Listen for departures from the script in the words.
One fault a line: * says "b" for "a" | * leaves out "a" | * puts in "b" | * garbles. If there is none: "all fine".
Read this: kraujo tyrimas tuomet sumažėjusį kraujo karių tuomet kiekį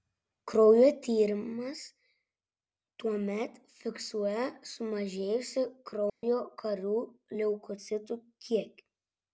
* puts in "fiksuoja"
* says "leukocitų" for "tuomet"